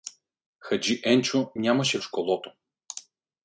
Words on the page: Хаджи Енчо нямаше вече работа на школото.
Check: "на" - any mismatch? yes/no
yes